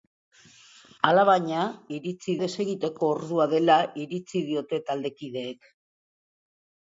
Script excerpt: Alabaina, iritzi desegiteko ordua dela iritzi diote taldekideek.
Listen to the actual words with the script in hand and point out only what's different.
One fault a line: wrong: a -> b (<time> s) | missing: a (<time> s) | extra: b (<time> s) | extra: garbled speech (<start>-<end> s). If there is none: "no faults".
no faults